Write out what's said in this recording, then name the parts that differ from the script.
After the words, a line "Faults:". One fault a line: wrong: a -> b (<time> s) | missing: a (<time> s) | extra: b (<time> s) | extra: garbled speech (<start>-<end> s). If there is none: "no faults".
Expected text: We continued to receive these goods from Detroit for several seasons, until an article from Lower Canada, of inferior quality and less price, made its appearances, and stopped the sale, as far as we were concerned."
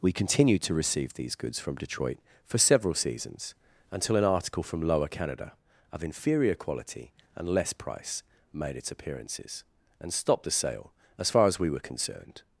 We continued to receive these goods from Detroit for several seasons, until an article from Lower Canada, of inferior quality and less price, made its appearances, and stopped the sale, as far as we were concerned."
Faults:
no faults